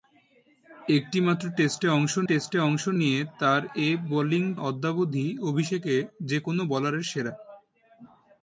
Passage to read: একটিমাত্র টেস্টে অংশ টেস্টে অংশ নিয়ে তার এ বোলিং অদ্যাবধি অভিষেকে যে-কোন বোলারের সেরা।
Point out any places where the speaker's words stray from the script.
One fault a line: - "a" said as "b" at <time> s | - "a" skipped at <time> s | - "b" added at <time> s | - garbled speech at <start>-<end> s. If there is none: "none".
none